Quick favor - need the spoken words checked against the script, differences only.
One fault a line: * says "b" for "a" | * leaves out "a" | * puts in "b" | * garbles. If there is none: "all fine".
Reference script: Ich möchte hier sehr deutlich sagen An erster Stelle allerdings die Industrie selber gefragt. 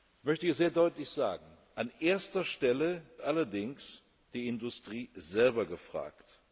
all fine